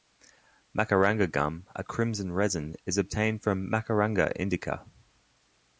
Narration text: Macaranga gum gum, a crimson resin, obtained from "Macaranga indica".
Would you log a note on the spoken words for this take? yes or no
yes